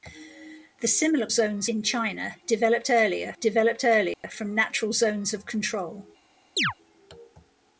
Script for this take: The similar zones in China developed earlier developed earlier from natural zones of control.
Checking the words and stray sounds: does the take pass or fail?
fail